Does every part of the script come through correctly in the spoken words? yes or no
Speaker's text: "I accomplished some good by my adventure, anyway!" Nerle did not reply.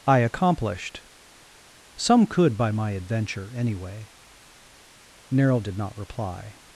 no